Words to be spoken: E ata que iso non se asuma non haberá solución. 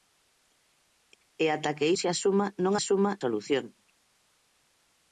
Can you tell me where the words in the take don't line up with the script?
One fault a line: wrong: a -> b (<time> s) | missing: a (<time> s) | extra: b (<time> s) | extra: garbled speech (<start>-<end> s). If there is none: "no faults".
missing: iso non (1.9 s)
wrong: haberá -> asuma (2.8 s)